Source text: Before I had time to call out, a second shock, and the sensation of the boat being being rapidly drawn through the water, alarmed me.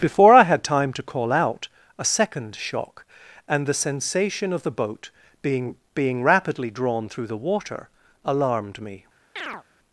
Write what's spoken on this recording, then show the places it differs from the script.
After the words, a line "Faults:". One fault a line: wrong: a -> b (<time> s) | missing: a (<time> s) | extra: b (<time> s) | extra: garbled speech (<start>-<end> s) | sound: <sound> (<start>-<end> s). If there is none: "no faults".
Before I had time to call out, a second shock, and the sensation of the boat being being rapidly drawn through the water, alarmed me.
Faults:
sound: chirp (9.4-9.6 s)